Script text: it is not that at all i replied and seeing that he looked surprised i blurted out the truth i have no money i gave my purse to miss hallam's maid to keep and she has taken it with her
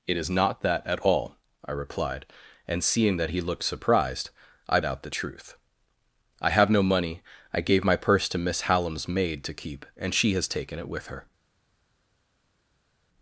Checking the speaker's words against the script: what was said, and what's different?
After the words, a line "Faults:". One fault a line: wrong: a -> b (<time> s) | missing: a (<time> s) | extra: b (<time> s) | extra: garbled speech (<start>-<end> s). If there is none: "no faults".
it is not that at all i replied and seeing that he looked surprised i out the truth i have no money i gave my purse to miss hallam's maid to keep and she has taken it with her
Faults:
missing: blurted (4.8 s)